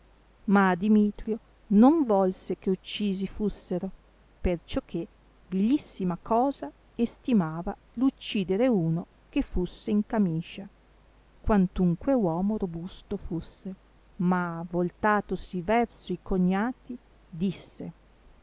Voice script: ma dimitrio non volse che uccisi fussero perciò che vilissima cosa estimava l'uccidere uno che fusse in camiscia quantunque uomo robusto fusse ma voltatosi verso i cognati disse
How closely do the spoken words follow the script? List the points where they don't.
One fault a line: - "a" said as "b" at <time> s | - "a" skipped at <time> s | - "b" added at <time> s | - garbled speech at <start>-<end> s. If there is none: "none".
none